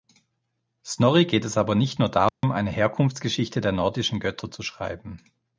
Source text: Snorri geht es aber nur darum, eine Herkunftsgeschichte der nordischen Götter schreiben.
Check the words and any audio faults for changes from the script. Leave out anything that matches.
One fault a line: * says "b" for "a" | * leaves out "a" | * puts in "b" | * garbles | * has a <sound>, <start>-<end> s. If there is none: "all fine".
* puts in "nicht"
* has a dropout, 2.3-2.4 s
* puts in "zu"